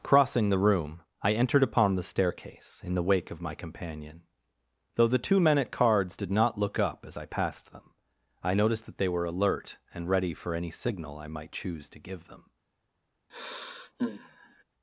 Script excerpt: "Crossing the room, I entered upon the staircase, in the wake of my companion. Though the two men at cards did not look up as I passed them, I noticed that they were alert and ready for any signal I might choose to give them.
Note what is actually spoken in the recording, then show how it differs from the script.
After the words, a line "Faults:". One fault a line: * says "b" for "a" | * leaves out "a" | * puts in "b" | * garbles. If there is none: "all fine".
"Crossing the room, I entered upon the staircase, in the wake of my companion. Though the two men at cards did not look up as I passed them, I noticed that they were alert and ready for any signal I might choose to give them.
Faults:
all fine